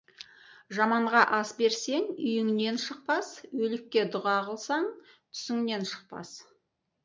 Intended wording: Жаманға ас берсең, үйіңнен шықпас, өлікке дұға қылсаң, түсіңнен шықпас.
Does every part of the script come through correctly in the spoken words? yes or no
yes